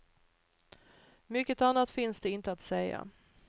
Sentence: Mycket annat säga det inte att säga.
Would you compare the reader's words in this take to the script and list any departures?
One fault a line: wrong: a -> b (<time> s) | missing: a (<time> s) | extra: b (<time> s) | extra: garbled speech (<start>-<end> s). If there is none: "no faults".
wrong: säga -> finns (1.9 s)